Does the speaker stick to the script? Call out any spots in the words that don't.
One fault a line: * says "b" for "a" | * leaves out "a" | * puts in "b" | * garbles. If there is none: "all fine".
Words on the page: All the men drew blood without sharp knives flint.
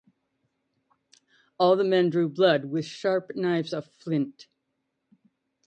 * says "with" for "without"
* puts in "of"